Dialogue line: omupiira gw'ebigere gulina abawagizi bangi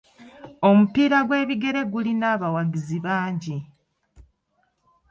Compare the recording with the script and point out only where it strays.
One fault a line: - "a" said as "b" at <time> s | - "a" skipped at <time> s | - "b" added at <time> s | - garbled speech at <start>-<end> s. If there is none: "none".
none